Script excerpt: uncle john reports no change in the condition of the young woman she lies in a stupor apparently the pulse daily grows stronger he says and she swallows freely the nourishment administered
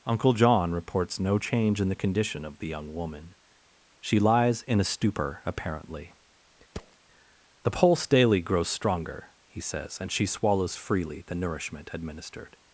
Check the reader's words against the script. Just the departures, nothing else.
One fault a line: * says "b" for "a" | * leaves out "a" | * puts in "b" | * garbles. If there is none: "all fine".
all fine